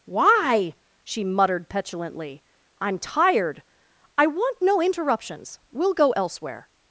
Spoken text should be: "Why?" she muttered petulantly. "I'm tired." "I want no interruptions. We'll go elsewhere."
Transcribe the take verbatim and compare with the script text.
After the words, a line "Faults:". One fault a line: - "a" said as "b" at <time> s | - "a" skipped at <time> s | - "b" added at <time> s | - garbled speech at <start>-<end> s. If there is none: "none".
"Why?" she muttered petulantly. "I'm tired." "I want no interruptions. We'll go elsewhere."
Faults:
none